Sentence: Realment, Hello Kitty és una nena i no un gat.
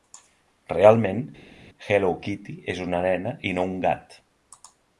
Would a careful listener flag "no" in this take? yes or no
no